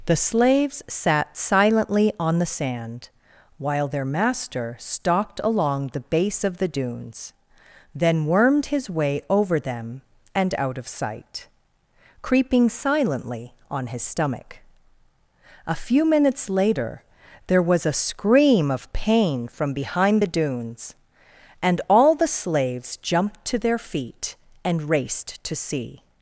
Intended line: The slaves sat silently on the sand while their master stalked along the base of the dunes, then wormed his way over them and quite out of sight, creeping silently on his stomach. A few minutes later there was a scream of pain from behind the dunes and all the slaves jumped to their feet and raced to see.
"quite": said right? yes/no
no